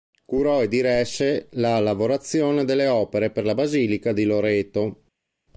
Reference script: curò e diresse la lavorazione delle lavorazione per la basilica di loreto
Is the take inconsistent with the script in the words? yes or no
yes